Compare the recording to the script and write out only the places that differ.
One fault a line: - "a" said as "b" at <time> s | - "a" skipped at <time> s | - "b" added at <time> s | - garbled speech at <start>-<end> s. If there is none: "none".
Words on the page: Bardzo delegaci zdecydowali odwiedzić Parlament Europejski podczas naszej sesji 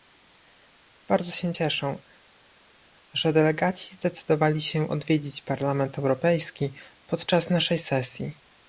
- "się cieszę że" added at 1.3 s
- "się" added at 4.6 s